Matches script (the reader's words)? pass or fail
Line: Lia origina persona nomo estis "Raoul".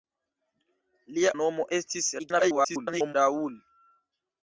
fail